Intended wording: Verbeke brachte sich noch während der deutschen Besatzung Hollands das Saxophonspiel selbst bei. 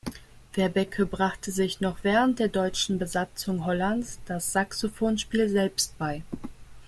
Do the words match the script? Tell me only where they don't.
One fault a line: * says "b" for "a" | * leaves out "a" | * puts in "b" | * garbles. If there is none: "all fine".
all fine